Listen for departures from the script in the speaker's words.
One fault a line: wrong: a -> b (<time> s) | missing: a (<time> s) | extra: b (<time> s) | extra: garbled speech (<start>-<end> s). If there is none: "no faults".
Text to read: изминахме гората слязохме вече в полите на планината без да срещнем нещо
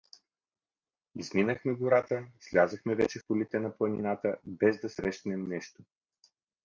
no faults